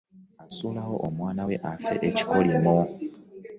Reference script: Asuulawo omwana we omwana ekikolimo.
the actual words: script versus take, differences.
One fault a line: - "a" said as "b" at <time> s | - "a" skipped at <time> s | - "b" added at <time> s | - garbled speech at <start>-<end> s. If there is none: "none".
- "omwana" said as "afe" at 1.7 s